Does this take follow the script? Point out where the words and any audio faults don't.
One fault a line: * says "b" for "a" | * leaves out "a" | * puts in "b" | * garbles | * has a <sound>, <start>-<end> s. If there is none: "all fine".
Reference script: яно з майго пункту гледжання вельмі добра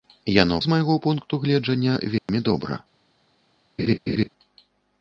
* has a dropout, 2.2-2.3 s
* has a laugh, 3.8-4.3 s